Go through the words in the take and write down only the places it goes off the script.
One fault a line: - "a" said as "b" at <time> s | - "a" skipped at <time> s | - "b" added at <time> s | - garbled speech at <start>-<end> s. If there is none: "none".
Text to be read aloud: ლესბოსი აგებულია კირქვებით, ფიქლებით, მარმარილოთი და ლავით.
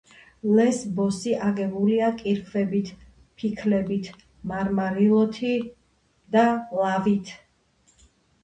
none